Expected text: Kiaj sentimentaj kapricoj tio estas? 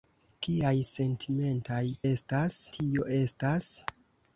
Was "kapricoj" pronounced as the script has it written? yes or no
no